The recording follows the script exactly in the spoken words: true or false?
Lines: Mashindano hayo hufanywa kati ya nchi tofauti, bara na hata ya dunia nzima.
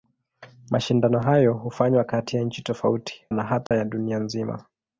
false